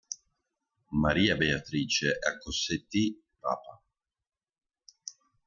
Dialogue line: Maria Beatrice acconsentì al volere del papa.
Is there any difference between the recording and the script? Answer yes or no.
yes